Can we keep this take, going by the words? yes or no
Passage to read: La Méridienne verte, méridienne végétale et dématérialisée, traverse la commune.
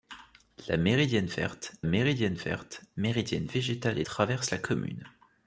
no